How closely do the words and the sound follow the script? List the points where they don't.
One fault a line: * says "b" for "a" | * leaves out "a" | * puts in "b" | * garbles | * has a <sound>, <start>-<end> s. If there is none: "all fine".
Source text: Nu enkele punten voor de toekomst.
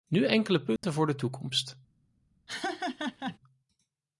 * has a dropout, 0.8-0.8 s
* has a laugh, 2.5-3.4 s